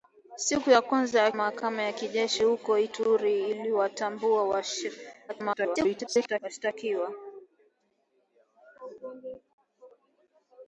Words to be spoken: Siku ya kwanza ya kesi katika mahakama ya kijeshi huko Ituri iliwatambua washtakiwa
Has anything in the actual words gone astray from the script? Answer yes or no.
yes